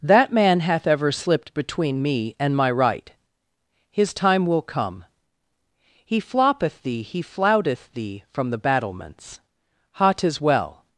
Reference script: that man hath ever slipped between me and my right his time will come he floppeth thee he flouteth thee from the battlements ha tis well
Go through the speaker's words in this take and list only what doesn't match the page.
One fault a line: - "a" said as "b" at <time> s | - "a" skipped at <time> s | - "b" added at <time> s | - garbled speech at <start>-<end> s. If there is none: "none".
none